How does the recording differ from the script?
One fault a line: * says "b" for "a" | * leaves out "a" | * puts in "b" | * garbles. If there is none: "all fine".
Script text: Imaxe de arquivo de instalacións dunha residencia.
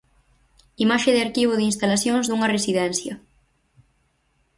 all fine